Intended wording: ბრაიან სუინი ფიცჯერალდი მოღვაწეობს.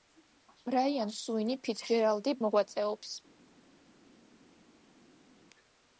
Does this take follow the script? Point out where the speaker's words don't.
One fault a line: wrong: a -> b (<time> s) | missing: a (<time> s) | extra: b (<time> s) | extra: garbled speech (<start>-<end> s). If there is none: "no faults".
no faults